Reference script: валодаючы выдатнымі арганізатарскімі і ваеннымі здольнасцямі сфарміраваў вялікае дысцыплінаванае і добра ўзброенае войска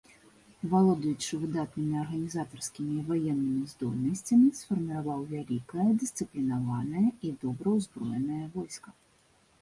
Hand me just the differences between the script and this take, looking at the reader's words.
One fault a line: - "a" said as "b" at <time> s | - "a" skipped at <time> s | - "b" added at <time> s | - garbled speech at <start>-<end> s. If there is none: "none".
none